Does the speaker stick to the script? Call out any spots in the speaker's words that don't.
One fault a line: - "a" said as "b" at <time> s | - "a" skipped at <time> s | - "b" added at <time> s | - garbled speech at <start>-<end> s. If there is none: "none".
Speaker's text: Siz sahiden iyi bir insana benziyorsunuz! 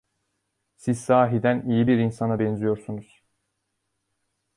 none